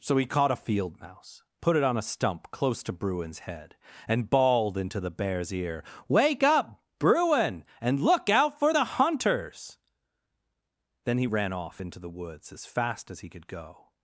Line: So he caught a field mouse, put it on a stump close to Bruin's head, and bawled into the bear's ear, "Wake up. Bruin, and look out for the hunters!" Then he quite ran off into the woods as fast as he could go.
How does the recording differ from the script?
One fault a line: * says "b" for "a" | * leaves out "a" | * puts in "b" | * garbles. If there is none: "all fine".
* leaves out "quite"